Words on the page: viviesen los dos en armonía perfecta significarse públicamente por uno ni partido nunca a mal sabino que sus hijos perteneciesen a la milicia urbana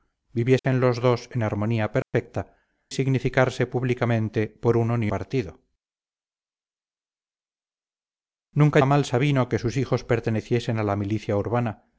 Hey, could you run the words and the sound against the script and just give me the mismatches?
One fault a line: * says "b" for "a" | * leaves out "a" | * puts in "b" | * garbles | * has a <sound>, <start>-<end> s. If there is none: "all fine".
* has a dropout, 0.6-0.6 s
* has a dropout, 2.0-2.1 s